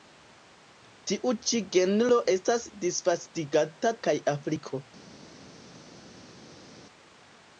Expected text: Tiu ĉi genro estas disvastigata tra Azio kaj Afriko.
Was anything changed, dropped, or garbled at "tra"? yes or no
yes